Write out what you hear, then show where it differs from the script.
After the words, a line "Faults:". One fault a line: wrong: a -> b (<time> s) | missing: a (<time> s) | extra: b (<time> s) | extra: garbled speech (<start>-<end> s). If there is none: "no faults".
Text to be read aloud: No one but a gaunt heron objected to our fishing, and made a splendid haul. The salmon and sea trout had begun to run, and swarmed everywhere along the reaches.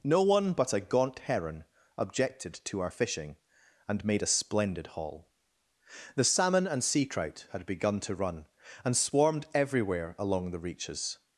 No one but a gaunt heron objected to our fishing, and made a splendid haul. The salmon and sea trout had begun to run, and swarmed everywhere along the reaches.
Faults:
no faults